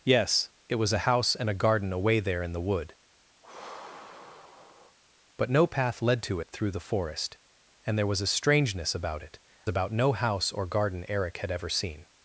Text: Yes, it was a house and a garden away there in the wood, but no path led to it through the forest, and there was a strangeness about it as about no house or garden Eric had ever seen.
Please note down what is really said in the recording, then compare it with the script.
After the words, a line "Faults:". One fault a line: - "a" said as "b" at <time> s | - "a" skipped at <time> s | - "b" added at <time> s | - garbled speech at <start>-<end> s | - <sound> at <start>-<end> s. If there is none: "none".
Yes, it was a house and a garden away there in the wood, but no path led to it through the forest, and there was a strangeness about it about no house or garden Eric had ever seen.
Faults:
- sigh at 3.4-5.0 s
- "as" skipped at 9.4 s